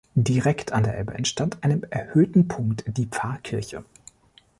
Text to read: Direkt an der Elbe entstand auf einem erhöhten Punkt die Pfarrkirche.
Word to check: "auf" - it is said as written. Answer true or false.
false